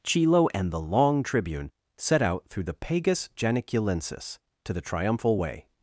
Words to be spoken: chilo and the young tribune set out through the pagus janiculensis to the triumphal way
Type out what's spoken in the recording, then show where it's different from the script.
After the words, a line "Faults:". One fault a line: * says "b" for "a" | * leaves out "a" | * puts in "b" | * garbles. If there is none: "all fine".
chilo and the long tribune set out through the pagus janiculensis to the triumphal way
Faults:
* says "long" for "young"